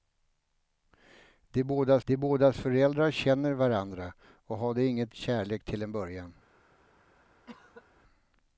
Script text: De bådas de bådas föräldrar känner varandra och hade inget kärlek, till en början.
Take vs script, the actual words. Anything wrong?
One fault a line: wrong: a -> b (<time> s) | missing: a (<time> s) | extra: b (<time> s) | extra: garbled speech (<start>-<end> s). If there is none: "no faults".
no faults